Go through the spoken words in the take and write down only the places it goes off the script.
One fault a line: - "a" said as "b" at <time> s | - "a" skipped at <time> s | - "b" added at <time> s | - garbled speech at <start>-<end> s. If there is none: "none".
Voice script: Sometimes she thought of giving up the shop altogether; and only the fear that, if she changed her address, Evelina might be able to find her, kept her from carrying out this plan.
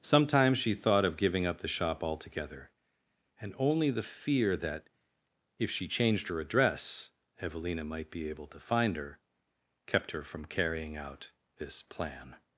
none